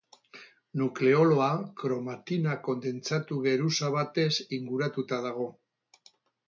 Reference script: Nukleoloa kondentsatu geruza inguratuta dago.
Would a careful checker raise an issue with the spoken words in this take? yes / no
yes